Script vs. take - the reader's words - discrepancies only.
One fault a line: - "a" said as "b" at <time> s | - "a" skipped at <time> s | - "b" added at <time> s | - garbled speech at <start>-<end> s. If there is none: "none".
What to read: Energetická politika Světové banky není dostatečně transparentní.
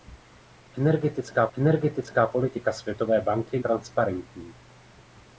- "energetická" added at 1.6 s
- "není dostatečně" skipped at 3.6 s